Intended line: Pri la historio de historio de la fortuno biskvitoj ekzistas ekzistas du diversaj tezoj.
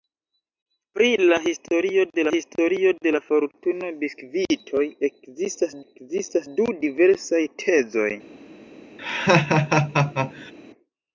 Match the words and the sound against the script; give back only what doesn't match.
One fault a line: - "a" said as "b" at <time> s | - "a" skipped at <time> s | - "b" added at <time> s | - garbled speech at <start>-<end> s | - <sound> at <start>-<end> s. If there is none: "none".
- laugh at 9.0-10.5 s